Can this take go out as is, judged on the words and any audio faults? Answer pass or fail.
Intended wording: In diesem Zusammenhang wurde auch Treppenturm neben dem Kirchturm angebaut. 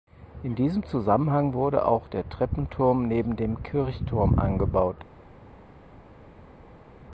fail